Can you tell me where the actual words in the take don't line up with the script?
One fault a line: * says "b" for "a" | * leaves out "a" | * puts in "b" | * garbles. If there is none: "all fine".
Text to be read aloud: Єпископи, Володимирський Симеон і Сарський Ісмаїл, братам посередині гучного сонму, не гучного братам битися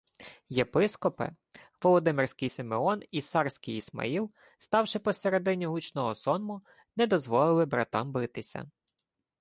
* says "ставши" for "братам"
* says "дозволили" for "гучного"